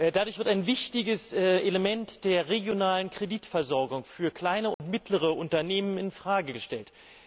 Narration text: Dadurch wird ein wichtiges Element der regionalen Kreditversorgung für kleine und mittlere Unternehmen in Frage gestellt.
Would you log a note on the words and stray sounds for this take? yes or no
yes